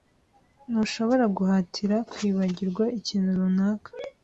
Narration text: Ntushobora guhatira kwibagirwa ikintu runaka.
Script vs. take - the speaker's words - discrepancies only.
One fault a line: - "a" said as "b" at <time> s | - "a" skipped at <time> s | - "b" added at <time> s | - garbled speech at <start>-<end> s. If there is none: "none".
none